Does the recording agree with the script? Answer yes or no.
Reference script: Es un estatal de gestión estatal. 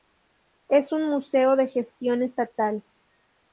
no